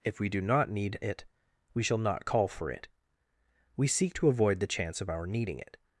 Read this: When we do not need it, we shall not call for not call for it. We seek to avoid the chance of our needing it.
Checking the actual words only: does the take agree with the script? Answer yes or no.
no